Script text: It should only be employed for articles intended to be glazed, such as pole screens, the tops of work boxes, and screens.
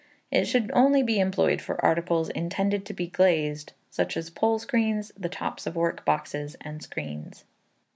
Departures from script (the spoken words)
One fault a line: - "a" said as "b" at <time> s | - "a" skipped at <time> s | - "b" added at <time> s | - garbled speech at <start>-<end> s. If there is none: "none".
none